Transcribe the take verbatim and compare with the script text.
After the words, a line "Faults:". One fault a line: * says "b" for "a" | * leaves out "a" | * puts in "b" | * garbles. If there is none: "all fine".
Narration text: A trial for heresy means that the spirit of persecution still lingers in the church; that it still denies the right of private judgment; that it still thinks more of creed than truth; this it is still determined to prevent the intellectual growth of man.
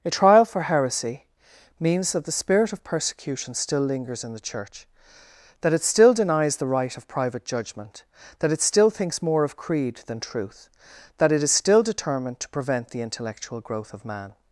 A trial for heresy means that the spirit of persecution still lingers in the church; that it still denies the right of private judgment; that it still thinks more of creed than truth; that it is still determined to prevent the intellectual growth of man.
Faults:
* says "that" for "this"